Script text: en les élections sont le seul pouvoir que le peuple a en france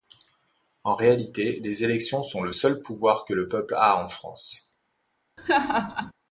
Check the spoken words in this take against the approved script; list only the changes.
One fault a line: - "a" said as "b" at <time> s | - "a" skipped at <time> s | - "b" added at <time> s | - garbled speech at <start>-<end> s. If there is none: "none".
- "réalité" added at 0.9 s